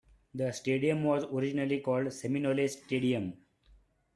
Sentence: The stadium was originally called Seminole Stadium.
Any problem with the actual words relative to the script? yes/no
no